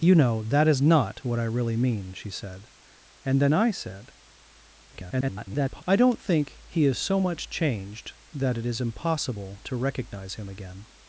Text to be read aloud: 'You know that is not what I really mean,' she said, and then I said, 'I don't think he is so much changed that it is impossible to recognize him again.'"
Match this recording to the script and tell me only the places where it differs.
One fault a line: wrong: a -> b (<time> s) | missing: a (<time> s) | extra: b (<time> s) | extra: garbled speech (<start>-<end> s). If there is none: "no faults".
extra: garbled speech (4.9-5.8 s)